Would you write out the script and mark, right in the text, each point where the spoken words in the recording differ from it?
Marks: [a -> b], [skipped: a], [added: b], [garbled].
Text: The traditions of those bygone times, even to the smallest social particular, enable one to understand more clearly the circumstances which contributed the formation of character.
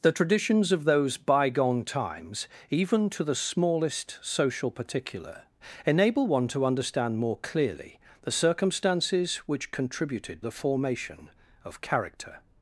The traditions of those bygone times, even to the smallest social particular, enable one to understand more clearly the circumstances which contributed the formation of character.